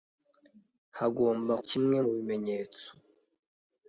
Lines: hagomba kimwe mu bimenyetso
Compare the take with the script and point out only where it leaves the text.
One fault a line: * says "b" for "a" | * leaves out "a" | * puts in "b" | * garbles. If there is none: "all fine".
all fine